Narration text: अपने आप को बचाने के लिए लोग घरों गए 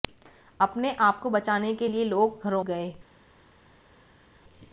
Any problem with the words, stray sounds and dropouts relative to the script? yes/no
no